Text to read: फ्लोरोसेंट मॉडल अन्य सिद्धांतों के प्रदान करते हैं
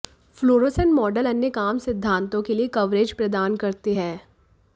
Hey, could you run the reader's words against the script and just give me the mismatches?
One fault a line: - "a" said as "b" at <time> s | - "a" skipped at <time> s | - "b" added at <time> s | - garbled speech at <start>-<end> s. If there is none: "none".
- "काम" added at 1.5 s
- "लिए कवरेज" added at 2.5 s